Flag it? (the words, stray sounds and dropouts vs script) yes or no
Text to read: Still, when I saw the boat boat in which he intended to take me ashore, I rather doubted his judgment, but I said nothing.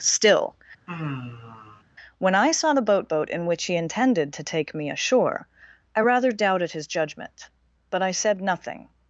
yes